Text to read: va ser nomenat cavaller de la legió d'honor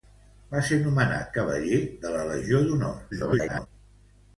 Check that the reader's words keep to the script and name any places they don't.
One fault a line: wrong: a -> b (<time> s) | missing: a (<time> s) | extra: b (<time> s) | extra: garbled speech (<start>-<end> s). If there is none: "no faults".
extra: garbled speech (3.1-3.7 s)